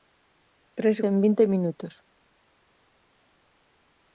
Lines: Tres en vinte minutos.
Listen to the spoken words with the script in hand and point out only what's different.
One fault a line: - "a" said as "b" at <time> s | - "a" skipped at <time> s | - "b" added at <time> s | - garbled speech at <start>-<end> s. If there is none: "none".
none